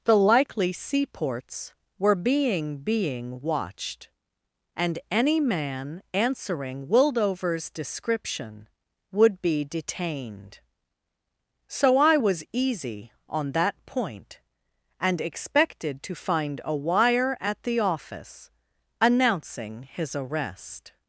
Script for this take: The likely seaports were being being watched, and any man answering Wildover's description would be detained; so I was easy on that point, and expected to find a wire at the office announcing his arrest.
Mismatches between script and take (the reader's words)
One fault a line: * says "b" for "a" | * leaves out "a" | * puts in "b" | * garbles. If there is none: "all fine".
all fine